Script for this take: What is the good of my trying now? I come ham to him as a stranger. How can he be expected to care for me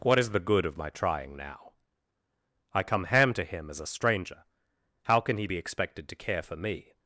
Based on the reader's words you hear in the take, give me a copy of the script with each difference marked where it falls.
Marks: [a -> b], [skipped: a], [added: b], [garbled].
What is the good of my trying now? I come ham to him as a stranger. How can he be expected to care for me